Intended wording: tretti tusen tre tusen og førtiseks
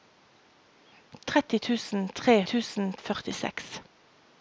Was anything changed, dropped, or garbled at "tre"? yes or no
no